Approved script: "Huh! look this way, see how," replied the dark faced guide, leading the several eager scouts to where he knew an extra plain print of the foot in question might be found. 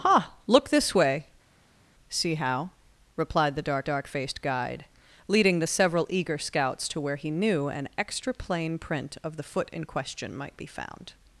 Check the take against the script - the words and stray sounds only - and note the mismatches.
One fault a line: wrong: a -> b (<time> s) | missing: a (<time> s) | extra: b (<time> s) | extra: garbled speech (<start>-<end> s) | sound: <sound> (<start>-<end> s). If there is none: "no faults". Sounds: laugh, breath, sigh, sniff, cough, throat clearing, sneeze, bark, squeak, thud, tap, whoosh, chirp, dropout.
extra: dark (3.8 s)